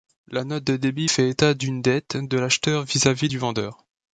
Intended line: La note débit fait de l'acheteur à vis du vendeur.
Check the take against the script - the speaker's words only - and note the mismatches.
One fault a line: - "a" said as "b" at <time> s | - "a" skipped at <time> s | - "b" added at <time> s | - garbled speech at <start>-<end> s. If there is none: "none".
- "de" added at 0.6 s
- "état d'une dette" added at 1.3 s
- "vis" added at 2.8 s